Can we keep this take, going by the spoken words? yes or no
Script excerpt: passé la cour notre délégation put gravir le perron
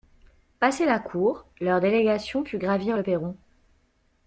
no